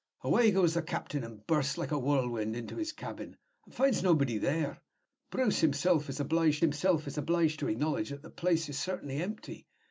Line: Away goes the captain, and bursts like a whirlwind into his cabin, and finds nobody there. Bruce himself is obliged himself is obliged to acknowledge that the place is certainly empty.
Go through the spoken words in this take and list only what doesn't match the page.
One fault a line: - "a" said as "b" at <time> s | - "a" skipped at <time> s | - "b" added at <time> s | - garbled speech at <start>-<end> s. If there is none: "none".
none